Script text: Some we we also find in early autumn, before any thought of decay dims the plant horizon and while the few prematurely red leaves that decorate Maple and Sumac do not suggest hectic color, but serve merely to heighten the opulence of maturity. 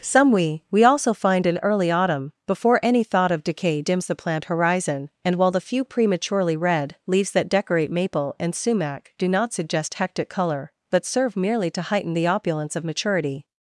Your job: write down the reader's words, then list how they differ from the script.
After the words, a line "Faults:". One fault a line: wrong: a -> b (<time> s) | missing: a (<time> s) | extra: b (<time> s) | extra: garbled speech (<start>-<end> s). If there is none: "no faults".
Some we we also find in early autumn, before any thought of decay dims the plant horizon and while the few prematurely red leaves that decorate Maple and Sumac do not suggest hectic color, but serve merely to heighten the opulence of maturity.
Faults:
no faults